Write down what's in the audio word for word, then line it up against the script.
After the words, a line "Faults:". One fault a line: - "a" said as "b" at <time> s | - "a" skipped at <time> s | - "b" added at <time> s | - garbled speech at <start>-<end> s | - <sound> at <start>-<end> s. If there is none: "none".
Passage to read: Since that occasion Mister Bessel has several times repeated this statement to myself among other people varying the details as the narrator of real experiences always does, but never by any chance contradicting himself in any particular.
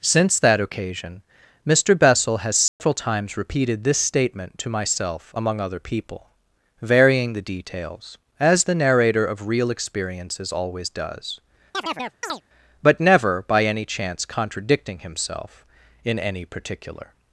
Since that occasion Mister Bessel has several times repeated this statement to myself among other people varying the details as the narrator of real experiences always does, but never by any chance contradicting himself in any particular.
Faults:
- dropout at 2.7-2.8 s
- chirp at 11.7-12.4 s